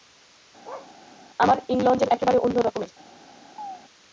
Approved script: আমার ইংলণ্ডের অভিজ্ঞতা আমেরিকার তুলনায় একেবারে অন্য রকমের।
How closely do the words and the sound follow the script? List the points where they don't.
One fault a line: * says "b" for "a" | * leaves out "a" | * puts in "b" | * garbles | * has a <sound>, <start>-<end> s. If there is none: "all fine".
* has a bark, 0.6-0.9 s
* leaves out "অভিজ্ঞতা আমেরিকার তুলনায়"
* has a chirp, 3.6-3.8 s